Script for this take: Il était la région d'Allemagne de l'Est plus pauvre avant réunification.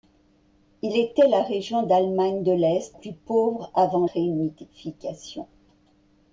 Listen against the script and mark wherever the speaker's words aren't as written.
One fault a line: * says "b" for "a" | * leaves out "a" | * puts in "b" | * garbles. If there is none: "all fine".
all fine